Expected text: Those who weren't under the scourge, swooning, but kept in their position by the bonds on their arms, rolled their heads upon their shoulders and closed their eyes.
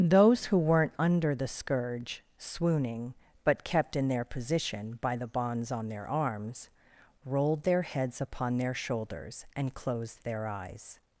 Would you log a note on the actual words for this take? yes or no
no